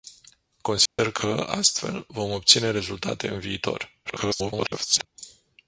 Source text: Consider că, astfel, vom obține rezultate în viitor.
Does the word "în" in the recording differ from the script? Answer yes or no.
no